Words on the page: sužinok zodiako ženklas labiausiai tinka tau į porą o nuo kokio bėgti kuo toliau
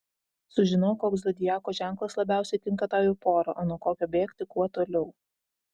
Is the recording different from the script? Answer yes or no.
yes